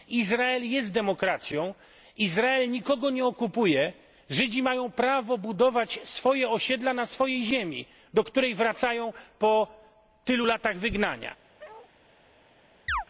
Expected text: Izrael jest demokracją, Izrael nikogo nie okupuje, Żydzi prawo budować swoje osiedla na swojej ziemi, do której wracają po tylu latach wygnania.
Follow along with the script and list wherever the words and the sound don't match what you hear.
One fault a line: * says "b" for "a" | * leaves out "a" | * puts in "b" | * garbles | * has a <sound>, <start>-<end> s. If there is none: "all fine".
* puts in "mają"
* has a bark, 11.6-11.9 s
* has a chirp, 12.9-13.0 s